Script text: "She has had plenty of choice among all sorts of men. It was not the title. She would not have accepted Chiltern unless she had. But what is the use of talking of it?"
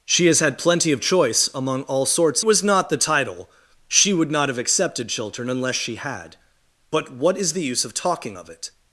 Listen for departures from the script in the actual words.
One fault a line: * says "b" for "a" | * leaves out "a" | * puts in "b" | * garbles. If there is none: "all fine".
* leaves out "of men It"